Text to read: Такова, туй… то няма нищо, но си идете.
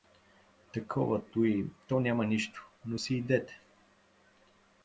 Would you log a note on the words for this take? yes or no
no